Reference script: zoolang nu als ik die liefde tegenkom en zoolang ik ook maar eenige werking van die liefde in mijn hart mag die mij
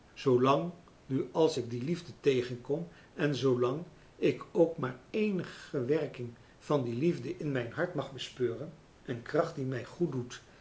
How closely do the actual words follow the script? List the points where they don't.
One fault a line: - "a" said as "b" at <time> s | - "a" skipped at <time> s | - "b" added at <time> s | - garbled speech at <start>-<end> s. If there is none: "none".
- "bespeuren een kracht" added at 8.1 s